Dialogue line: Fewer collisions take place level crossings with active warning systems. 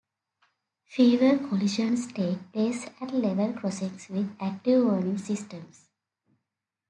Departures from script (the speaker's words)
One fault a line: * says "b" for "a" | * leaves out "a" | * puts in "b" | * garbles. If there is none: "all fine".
* puts in "at"